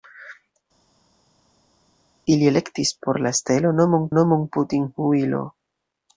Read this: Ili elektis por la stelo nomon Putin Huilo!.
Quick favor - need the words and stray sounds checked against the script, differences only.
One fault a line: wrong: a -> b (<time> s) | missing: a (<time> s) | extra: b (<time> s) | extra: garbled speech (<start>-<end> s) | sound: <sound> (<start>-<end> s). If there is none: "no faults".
extra: nomon (4.2 s)